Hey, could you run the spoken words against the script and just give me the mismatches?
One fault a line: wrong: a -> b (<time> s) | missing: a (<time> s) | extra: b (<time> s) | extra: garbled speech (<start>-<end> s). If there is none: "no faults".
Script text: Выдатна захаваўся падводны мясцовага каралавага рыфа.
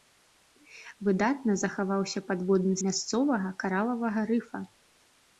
no faults